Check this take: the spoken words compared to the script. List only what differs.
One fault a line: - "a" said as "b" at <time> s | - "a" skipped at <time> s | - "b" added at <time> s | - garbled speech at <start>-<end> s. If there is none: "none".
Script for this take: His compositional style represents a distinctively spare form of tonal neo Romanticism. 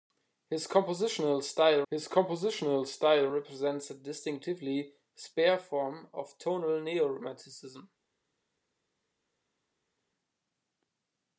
- "his compositional style" added at 1.9 s